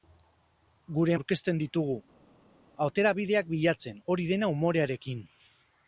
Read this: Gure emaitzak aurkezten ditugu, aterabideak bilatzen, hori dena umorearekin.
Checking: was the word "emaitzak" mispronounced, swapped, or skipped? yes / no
yes